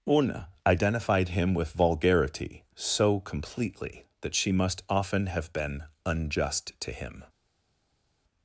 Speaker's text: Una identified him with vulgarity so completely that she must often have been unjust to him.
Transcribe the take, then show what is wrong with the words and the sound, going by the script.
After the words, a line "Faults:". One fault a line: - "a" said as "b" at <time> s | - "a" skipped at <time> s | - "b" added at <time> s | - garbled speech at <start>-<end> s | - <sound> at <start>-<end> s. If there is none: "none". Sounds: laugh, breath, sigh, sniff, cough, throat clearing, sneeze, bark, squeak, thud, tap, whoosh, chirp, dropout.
Una identified him with vulgarity so completely that she must often have been unjust to him.
Faults:
none